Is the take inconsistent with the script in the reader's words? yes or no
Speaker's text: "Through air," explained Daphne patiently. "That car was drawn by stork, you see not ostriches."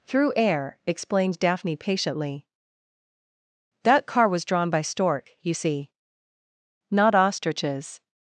no